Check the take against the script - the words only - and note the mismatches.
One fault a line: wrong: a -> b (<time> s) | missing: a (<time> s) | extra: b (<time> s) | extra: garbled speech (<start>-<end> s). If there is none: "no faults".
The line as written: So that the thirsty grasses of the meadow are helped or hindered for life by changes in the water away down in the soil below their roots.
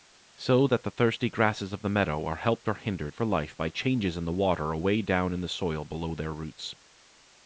no faults